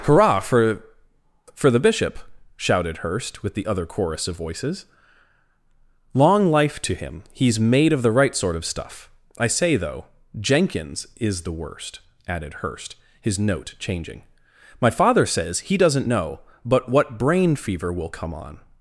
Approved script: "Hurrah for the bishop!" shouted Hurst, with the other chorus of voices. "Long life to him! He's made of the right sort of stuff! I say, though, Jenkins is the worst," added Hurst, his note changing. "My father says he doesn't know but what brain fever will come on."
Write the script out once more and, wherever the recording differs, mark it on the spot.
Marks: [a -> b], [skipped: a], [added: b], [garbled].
"Hurrah for [added: for] the bishop!" shouted Hurst, with the other chorus of voices. "Long life to him! He's made of the right sort of stuff! I say, though, Jenkins is the worst," added Hurst, his note changing. "My father says he doesn't know but what brain fever will come on."